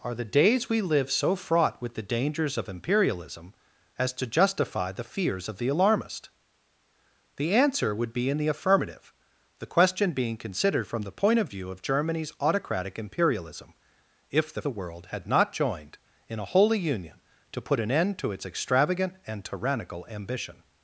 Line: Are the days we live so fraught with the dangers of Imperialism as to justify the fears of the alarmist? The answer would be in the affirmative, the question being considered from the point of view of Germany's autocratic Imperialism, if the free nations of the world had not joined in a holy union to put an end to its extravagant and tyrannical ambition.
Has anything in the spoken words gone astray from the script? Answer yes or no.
yes